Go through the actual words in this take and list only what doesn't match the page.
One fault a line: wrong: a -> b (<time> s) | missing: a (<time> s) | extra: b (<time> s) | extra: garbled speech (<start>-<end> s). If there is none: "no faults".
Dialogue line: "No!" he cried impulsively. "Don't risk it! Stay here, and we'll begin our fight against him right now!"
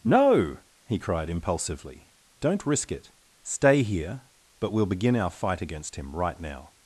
wrong: and -> but (4.6 s)